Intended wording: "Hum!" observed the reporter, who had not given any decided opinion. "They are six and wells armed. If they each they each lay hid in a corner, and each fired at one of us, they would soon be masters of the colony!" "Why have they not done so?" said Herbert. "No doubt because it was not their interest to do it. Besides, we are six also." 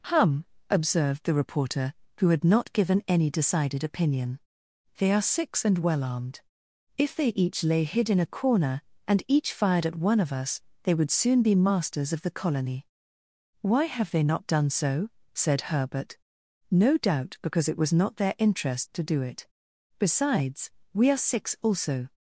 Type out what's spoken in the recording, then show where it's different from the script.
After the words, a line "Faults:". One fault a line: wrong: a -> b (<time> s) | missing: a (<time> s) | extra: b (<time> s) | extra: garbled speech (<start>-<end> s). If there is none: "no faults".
"Hum!" observed the reporter, who had not given any decided opinion. "They are six and well armed. If they each lay hid in a corner, and each fired at one of us, they would soon be masters of the colony!" "Why have they not done so?" said Herbert. "No doubt because it was not their interest to do it. Besides, we are six also."
Faults:
wrong: wells -> well (5.8 s)
missing: they each (7.6 s)